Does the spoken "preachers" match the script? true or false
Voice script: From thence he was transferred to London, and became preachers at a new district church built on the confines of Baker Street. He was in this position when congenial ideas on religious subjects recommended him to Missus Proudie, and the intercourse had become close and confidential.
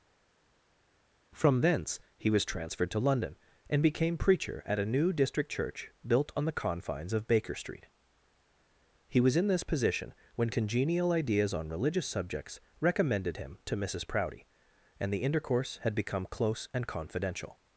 false